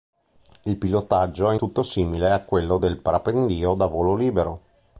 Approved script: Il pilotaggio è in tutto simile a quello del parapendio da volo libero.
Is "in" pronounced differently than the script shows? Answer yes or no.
yes